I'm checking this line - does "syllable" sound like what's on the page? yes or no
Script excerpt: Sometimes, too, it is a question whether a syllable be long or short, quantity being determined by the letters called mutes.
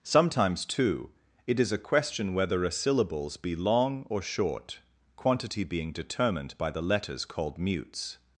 no